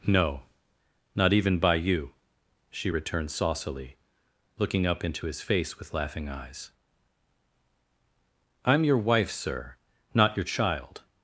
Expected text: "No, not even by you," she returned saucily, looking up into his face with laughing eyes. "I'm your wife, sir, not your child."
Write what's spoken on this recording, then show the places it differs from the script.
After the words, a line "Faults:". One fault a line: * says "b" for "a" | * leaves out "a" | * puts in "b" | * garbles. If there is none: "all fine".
"No, not even by you," she returned saucily, looking up into his face with laughing eyes. "I'm your wife, sir, not your child."
Faults:
all fine